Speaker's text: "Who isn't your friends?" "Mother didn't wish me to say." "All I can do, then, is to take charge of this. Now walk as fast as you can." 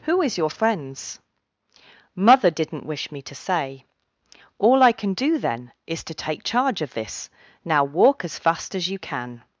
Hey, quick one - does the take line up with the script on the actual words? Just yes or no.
no